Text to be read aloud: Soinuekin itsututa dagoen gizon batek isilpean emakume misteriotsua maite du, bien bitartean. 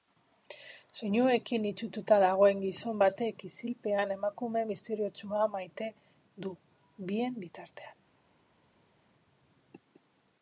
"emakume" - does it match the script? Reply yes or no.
yes